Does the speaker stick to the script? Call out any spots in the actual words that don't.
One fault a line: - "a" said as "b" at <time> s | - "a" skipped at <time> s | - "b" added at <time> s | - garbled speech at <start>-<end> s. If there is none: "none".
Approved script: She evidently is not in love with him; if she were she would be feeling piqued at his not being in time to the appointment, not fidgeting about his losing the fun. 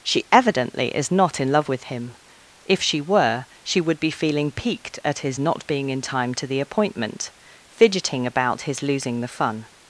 - "not" skipped at 7.3 s